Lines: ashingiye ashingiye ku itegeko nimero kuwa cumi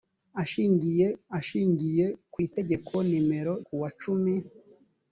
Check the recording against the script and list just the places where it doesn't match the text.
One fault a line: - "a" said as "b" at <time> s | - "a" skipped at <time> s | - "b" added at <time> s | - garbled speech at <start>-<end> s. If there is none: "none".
none